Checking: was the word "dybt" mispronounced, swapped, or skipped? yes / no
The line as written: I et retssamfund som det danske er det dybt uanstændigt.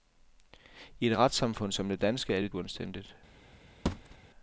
yes